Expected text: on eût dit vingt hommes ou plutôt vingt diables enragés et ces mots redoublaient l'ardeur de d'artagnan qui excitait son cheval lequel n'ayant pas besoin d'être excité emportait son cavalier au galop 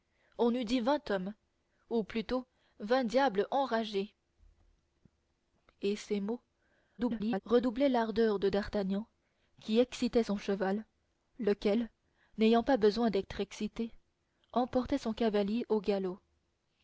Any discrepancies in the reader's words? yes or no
yes